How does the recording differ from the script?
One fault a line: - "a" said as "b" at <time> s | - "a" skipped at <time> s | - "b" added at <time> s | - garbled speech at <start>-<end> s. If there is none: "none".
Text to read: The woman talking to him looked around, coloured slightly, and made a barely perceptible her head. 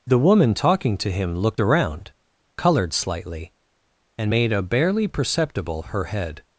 none